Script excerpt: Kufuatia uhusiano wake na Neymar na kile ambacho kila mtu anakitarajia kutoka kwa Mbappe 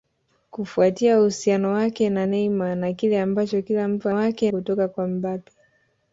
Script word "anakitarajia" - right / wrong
wrong